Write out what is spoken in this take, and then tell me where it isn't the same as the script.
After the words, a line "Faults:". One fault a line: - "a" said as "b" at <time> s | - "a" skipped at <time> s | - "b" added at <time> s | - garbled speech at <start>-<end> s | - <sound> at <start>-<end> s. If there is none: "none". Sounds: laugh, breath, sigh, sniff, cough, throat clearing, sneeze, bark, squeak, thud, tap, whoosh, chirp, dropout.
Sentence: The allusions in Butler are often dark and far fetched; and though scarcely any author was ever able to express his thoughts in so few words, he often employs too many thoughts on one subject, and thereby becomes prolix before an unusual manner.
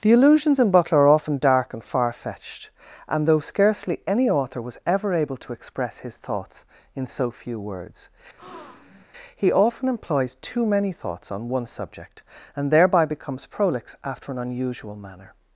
The allusions in Butler are often dark and far fetched; and though scarcely any author was ever able to express his thoughts in so few words, he often employs too many thoughts on one subject, and thereby becomes prolix after an unusual manner.
Faults:
- breath at 8.4-9.1 s
- "before" said as "after" at 14.0 s